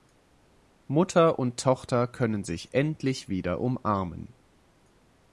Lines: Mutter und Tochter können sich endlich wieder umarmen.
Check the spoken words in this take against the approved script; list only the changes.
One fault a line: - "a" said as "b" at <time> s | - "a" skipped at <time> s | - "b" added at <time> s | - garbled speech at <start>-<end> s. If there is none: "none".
none